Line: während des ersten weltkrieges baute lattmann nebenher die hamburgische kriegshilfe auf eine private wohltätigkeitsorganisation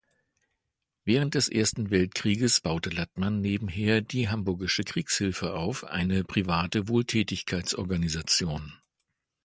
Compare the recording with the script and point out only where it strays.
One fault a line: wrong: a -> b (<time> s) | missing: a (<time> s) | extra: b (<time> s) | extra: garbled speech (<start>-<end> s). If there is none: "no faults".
no faults